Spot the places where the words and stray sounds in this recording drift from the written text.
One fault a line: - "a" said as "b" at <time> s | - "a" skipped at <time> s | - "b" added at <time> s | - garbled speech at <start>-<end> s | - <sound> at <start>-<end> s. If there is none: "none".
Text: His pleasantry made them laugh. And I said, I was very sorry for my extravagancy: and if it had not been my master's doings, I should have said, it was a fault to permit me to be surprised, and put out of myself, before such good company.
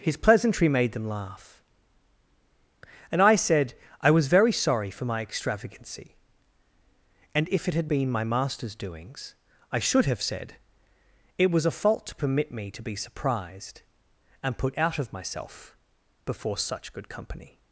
- "not" skipped at 7.9 s